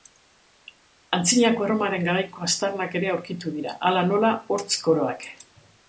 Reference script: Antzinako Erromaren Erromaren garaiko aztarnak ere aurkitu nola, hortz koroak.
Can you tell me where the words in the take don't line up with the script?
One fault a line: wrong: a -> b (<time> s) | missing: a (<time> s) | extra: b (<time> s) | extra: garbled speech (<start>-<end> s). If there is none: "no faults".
missing: Erromaren (2.1 s)
extra: dira hala (3.6 s)